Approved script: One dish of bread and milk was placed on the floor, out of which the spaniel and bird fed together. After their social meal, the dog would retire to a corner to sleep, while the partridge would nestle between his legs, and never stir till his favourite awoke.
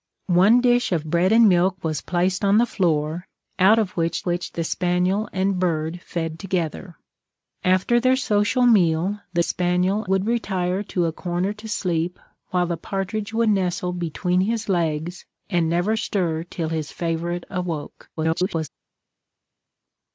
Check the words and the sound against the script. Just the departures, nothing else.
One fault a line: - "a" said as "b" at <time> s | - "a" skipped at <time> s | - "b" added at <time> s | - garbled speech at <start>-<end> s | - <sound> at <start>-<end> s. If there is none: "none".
- "which" added at 4.2 s
- "dog" said as "spaniel" at 9.4 s
- garbled speech at 18.2-18.7 s